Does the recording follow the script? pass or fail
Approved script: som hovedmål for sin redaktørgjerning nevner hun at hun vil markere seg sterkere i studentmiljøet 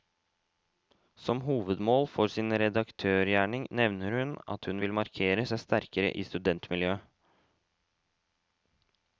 pass